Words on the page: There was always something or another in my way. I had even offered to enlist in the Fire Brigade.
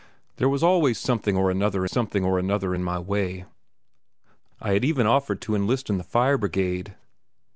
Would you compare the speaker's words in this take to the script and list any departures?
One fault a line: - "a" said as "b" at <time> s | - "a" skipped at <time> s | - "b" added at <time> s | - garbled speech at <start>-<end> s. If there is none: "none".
- "something or another" added at 1.8 s